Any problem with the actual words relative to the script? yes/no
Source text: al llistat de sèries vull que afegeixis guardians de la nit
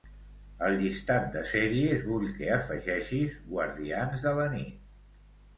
no